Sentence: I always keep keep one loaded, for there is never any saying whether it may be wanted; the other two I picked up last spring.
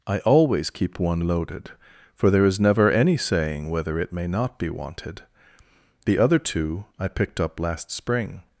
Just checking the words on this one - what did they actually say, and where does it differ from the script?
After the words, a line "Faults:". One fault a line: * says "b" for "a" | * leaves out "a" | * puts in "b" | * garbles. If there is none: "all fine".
I always keep one loaded, for there is never any saying whether it may not be wanted; the other two I picked up last spring.
Faults:
* leaves out "keep"
* puts in "not"